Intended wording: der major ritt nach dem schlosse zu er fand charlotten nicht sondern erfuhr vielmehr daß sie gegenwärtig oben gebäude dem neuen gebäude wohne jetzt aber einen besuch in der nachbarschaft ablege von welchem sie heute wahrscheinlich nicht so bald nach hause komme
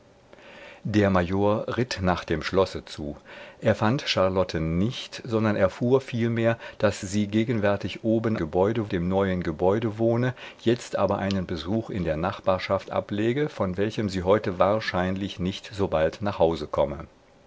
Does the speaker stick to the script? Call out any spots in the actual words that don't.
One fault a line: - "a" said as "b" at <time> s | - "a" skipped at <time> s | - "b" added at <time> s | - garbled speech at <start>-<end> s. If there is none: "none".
none